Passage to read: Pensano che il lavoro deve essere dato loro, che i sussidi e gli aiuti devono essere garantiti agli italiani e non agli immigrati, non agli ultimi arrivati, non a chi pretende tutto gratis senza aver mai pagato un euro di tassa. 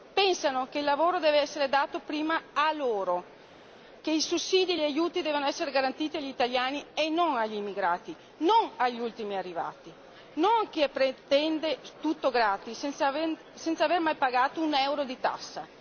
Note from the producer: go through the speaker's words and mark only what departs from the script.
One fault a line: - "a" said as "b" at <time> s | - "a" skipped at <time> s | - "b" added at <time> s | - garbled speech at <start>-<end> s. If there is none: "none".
- "prima a" added at 2.0 s